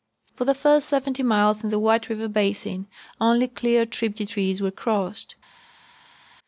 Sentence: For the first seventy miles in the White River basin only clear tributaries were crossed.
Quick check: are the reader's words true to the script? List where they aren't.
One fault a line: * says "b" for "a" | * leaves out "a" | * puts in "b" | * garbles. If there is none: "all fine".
all fine